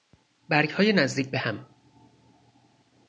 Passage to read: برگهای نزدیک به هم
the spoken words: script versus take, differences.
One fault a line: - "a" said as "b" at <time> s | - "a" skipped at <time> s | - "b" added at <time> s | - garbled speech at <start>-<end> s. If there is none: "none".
none